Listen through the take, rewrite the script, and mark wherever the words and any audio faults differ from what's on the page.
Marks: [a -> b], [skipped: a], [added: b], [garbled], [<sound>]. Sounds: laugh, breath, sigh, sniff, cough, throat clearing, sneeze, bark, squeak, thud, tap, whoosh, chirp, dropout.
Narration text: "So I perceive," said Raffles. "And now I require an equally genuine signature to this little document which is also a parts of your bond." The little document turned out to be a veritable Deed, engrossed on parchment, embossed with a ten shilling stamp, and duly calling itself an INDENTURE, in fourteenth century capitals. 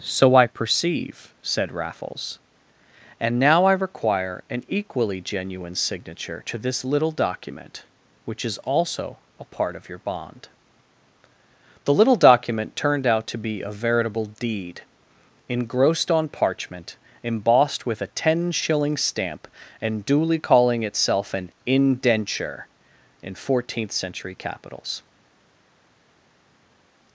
"So I perceive," said Raffles. "And now I require an equally genuine signature to this little document which is also a [parts -> part] of your bond." The little document turned out to be a veritable Deed, engrossed on parchment, embossed with a ten shilling stamp, and duly calling itself an INDENTURE, in fourteenth century capitals.